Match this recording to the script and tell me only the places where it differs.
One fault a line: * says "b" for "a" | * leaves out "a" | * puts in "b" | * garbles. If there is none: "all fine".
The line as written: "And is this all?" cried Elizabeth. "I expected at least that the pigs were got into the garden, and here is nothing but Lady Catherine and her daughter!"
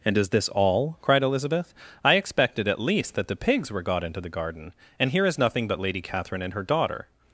all fine